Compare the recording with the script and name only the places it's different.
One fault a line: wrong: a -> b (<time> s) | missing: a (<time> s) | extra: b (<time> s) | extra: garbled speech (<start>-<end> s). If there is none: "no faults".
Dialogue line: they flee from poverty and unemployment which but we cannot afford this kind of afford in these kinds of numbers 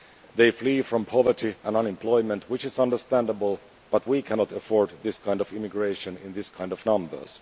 extra: is understandable (2.6 s)
wrong: afford -> immigration (5.5 s)